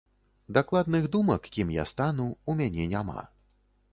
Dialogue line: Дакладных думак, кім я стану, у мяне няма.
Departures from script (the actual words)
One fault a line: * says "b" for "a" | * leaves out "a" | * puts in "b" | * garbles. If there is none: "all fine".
all fine